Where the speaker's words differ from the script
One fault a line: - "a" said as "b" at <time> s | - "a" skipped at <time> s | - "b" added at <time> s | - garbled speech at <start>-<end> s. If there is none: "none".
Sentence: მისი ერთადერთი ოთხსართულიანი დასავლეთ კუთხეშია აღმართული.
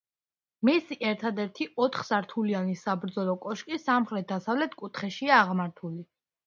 - "საბრძოლო კოშკი სამხრეთ" added at 2.9 s